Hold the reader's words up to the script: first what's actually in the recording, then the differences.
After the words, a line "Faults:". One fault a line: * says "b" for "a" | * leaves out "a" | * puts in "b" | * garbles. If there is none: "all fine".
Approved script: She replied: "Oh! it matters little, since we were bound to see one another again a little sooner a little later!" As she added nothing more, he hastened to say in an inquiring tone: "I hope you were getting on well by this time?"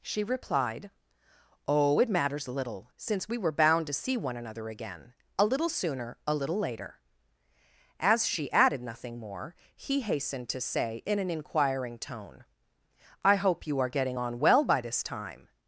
She replied: "Oh! it matters little, since we were bound to see one another again a little sooner a little later!" As she added nothing more, he hastened to say in an inquiring tone: "I hope you are getting on well by this time?"
Faults:
* says "are" for "were"